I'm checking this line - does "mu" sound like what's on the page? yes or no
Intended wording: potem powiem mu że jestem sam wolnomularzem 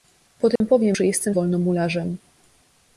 no